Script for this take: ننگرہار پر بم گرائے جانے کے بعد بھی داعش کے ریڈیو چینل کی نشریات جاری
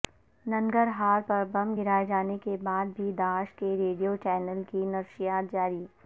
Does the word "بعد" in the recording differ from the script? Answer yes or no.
no